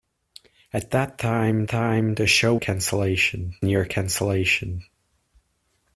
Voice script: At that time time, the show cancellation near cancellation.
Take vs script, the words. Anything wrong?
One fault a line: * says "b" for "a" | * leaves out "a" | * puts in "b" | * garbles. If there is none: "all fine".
all fine